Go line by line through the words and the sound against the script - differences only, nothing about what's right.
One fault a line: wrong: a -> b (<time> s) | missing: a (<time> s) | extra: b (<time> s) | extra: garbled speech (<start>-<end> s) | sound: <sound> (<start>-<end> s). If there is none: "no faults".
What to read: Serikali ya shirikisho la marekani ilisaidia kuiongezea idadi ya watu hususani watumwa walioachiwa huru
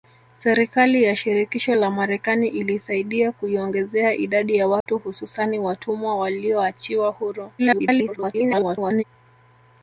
sound: dropout (4.8-4.9 s)
extra: garbled speech (7.6-9.0 s)